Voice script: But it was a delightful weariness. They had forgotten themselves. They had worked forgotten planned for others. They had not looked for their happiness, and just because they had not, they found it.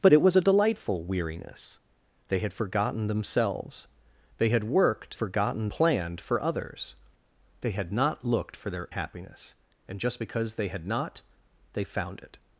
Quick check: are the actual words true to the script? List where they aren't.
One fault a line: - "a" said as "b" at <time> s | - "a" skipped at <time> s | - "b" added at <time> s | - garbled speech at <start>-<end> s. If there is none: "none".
none